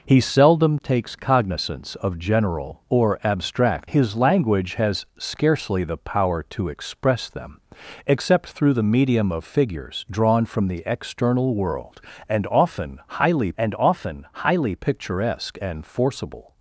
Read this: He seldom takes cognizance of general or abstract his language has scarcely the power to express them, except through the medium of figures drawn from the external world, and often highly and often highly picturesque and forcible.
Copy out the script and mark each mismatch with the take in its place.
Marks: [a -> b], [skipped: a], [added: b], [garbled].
He seldom takes cognizance of general or abstract his language has scarcely the power to express them, except through the medium of figures drawn from the external world, and often highly and often highly picturesque and forcible.